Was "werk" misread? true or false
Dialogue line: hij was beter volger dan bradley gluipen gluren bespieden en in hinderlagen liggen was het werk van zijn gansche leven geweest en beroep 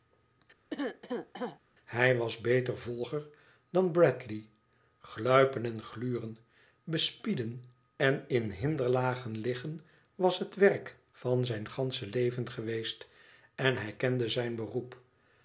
false